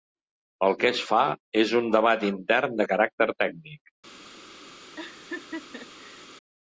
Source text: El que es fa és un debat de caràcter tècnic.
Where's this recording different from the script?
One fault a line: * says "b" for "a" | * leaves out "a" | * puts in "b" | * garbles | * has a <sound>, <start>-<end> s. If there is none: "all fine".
* puts in "intern"
* has a laugh, 5.0-6.3 s